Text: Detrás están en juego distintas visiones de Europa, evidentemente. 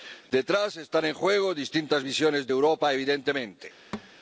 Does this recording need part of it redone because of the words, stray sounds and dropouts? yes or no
yes